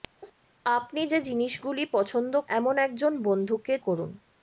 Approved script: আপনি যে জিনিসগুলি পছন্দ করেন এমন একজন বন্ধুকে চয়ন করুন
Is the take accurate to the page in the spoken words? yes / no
no